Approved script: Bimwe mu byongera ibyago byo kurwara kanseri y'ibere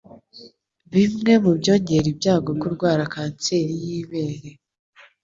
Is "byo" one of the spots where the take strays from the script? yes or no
yes